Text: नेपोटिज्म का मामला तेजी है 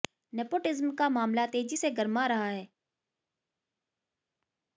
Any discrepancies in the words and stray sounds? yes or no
yes